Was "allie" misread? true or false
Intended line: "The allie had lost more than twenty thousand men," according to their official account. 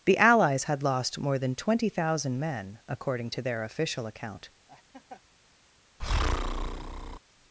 true